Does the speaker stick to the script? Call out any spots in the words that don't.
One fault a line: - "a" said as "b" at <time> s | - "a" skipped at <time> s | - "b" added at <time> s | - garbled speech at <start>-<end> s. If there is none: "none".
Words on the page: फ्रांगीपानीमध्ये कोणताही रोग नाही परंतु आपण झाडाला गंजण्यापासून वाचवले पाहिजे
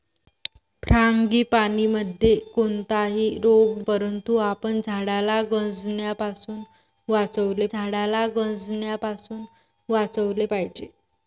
- "नाही" skipped at 3.9 s
- "झाडाला गंजण्यापासून वाचवले" added at 7.7 s